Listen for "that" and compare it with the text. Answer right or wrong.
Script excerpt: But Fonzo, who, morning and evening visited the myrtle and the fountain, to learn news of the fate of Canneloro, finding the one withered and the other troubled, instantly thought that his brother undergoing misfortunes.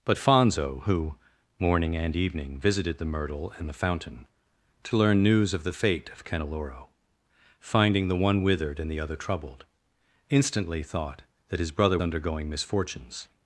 right